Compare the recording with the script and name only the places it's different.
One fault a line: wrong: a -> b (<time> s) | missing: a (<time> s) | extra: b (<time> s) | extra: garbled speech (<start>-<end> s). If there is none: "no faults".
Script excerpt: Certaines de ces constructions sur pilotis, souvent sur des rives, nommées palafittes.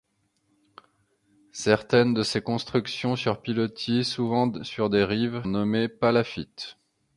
no faults